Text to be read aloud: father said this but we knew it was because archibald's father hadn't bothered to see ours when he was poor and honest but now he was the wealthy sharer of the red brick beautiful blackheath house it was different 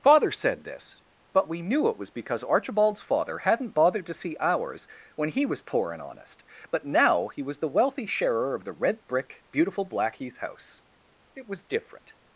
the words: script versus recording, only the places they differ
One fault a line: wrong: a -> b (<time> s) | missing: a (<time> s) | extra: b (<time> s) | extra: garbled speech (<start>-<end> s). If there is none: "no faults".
no faults